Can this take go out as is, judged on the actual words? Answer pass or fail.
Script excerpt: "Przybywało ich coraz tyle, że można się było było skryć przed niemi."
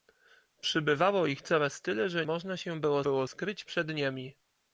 pass